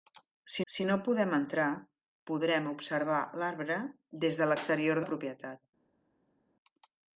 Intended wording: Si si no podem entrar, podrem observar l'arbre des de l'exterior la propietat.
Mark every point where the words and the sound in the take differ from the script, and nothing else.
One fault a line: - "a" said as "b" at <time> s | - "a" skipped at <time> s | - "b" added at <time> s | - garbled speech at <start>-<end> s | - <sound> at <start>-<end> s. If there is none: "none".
none